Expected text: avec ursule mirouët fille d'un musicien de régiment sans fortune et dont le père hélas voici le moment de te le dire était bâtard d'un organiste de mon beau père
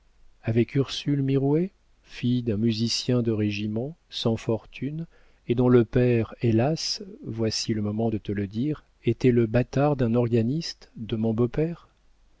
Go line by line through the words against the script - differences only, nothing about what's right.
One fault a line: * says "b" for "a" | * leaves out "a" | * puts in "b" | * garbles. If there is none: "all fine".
* puts in "le"